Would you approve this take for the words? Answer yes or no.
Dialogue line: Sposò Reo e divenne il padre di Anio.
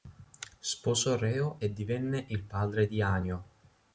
yes